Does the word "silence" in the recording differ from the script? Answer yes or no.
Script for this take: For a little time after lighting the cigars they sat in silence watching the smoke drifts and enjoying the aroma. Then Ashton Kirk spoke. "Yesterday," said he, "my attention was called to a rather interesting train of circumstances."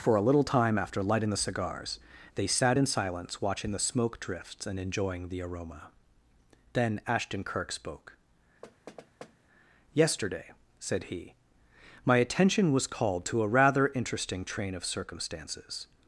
no